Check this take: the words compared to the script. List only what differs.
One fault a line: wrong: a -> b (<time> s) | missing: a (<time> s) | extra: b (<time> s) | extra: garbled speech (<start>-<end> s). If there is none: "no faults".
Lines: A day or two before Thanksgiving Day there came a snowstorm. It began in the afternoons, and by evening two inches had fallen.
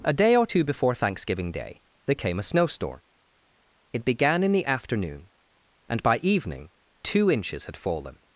wrong: afternoons -> afternoon (4.7 s)